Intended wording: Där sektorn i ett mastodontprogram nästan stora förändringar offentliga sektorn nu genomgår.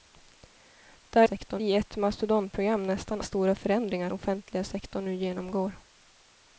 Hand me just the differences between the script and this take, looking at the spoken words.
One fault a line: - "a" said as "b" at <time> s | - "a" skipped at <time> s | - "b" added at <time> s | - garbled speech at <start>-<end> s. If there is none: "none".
none